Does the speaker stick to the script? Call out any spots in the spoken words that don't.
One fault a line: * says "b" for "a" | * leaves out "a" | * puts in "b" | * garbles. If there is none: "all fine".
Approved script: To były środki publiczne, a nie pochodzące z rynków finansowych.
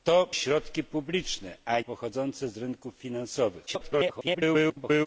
* leaves out "były"
* leaves out "nie"
* garbles